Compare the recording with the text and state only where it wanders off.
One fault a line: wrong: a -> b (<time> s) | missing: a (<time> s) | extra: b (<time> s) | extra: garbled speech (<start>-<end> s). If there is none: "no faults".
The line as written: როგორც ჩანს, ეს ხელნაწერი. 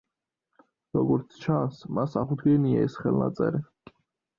extra: მას აღუდგენია (2.0 s)